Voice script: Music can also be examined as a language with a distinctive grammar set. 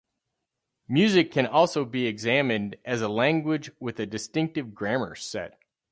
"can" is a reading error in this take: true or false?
false